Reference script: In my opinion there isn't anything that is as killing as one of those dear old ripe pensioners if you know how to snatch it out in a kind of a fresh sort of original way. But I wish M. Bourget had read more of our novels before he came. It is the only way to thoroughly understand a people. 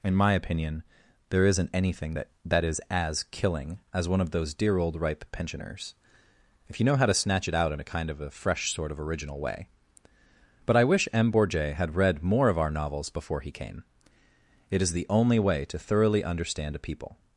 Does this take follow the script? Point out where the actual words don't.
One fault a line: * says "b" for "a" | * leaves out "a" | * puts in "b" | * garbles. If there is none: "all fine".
* puts in "that"